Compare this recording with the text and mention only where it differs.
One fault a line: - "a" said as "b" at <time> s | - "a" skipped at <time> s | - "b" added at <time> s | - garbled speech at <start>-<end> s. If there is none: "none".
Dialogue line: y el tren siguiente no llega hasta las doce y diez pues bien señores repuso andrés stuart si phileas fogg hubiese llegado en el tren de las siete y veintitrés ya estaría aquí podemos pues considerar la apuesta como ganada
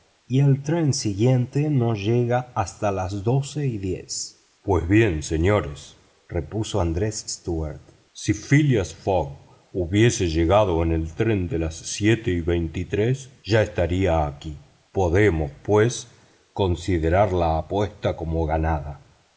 none